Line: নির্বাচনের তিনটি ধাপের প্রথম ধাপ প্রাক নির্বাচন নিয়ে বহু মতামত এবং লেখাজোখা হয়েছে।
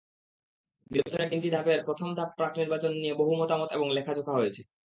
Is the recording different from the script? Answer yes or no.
no